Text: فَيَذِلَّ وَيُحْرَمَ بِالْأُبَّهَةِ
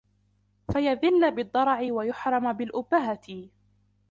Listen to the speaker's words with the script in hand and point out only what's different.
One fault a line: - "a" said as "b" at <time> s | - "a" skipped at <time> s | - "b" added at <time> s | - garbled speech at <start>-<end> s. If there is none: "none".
- "بِالضَّرَعِ" added at 1.4 s